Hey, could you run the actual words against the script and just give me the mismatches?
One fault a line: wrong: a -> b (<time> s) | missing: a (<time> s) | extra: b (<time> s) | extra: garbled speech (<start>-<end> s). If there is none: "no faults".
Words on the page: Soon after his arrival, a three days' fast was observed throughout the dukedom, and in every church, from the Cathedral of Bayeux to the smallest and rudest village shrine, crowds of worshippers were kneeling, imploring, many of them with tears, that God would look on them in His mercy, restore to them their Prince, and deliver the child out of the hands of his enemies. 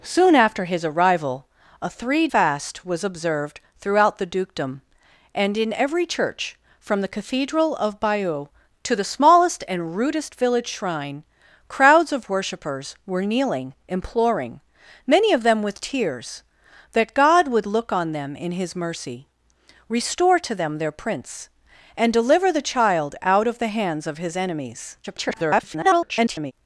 missing: days (2.3 s)
extra: garbled speech (25.0-26.5 s)